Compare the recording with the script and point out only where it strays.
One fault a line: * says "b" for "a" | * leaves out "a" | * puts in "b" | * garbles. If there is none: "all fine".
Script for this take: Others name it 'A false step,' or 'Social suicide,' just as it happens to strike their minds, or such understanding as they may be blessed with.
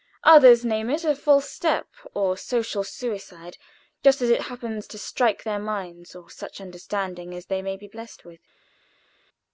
all fine